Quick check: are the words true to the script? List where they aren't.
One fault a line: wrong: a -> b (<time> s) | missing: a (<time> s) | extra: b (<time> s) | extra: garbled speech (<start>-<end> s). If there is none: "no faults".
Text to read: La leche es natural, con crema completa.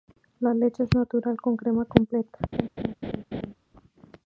no faults